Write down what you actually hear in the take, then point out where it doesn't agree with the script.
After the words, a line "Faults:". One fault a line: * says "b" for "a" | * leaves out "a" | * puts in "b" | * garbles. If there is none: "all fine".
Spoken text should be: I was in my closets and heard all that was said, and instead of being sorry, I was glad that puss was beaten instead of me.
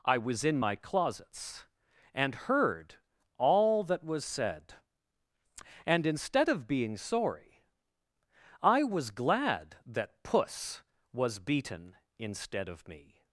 I was in my closets and heard all that was said, and instead of being sorry, I was glad that puss was beaten instead of me.
Faults:
all fine